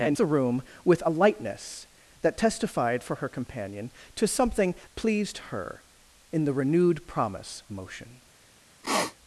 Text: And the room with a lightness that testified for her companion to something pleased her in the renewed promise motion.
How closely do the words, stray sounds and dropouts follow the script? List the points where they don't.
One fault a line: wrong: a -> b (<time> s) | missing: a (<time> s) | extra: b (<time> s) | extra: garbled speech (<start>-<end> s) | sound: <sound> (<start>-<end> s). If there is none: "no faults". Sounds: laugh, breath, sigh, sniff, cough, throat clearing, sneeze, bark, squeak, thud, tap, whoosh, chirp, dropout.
sound: sniff (8.8-9.1 s)